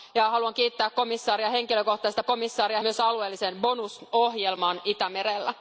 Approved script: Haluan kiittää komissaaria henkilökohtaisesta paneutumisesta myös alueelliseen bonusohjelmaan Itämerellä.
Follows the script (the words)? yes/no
no